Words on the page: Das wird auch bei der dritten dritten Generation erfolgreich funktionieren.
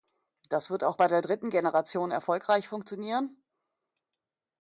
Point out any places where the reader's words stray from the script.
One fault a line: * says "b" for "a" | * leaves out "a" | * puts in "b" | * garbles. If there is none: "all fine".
* leaves out "dritten"